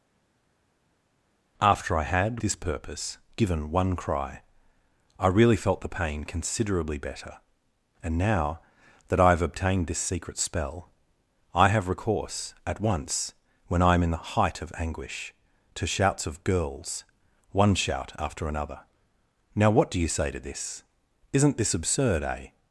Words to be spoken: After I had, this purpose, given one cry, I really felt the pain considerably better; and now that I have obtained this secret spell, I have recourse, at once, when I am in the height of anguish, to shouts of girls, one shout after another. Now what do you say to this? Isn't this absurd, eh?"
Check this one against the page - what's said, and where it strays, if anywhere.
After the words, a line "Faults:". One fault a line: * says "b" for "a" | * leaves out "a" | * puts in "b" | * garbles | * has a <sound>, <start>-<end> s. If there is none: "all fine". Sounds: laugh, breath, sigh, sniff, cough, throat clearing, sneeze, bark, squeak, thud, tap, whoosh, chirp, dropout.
After I had, this purpose, given one cry, I really felt the pain considerably better; and now that I have obtained this secret spell, I have recourse, at once, when I am in the height of anguish, to shouts of girls, one shout after another. Now what do you say to this? Isn't this absurd, eh?"
Faults:
all fine